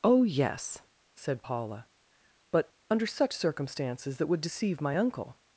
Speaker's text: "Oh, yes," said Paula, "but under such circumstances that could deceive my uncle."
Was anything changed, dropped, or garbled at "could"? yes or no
yes